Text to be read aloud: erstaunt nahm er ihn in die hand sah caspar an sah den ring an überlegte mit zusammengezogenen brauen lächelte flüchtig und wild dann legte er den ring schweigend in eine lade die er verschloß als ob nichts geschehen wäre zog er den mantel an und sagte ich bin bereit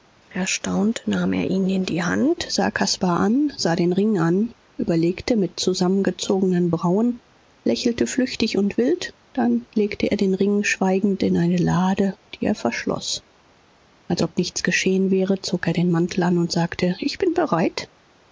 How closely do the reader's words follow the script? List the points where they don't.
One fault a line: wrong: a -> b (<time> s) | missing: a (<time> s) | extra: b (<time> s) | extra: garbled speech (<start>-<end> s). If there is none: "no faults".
no faults